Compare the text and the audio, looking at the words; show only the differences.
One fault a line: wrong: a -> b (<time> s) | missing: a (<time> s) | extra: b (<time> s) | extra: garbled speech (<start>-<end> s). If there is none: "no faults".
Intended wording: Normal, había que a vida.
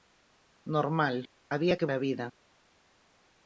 no faults